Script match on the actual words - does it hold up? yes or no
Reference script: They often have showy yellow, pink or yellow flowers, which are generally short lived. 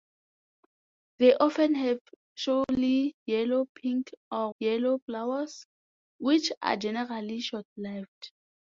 yes